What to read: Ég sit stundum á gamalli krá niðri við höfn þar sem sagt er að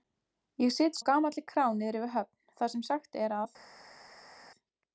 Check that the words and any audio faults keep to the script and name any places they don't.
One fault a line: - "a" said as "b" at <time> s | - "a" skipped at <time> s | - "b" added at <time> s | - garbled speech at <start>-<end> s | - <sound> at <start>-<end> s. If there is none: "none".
- "stundum" skipped at 1.0 s